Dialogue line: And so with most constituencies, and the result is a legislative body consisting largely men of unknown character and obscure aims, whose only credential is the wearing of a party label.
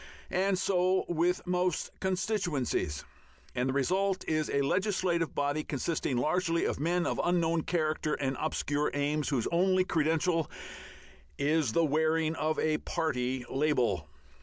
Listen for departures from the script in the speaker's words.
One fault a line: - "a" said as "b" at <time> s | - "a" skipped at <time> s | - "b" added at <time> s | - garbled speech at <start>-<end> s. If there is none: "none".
- "of" added at 6.6 s